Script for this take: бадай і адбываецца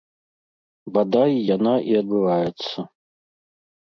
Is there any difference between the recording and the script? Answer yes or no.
yes